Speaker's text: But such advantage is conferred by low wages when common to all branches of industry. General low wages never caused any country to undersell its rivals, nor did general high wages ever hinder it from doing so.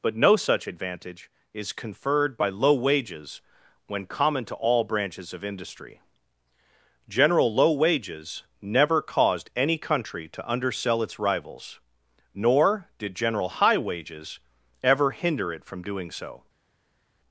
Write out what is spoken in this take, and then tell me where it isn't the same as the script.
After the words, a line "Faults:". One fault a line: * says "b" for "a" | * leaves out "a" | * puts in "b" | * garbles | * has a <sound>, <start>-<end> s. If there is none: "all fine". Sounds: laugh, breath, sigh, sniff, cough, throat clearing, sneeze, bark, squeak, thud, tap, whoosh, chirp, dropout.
But no such advantage is conferred by low wages when common to all branches of industry. General low wages never caused any country to undersell its rivals, nor did general high wages ever hinder it from doing so.
Faults:
* puts in "no"